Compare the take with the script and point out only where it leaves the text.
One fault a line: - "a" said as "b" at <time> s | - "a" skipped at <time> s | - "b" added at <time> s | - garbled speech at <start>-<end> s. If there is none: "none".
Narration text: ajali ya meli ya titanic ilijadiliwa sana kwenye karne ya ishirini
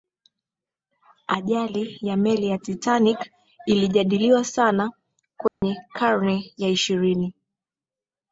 none